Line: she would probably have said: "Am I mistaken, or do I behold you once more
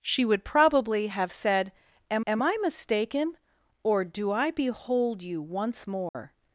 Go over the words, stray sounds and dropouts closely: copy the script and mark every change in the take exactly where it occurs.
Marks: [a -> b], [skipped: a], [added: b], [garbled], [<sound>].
she would probably have said: "Am [added: am] I mistaken, or do I behold you once more [dropout]